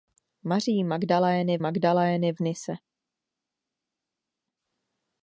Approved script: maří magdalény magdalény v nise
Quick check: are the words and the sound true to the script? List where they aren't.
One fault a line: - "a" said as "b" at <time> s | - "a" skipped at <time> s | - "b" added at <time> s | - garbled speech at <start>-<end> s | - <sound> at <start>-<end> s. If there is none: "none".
none